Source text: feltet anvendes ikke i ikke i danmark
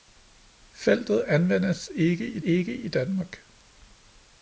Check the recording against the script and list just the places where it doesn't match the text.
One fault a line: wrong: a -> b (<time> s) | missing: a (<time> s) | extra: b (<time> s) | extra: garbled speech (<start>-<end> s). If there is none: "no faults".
no faults